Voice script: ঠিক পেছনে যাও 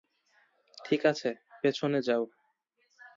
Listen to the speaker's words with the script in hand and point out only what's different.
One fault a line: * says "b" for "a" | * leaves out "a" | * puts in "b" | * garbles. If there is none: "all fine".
* puts in "আছে"